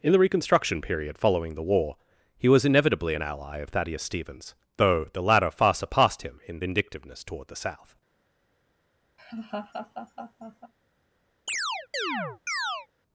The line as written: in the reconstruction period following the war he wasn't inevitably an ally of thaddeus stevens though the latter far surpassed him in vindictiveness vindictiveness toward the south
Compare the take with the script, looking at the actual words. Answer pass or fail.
fail